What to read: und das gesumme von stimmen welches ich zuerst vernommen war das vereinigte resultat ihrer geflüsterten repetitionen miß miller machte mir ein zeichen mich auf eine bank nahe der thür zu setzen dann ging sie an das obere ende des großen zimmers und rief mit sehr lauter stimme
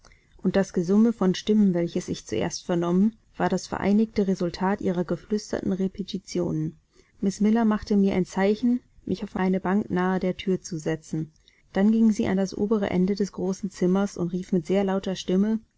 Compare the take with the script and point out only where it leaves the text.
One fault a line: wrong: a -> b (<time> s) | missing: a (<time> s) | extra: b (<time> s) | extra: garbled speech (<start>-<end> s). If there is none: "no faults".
no faults